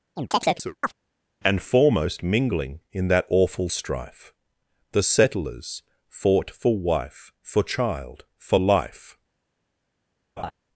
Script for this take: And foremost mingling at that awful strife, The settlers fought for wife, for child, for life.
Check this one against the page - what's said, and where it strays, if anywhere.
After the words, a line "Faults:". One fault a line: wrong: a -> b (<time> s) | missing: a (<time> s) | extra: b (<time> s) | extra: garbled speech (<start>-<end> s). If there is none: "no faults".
And foremost mingling in that awful strife, The settlers fought for wife, for child, for life.
Faults:
wrong: at -> in (2.9 s)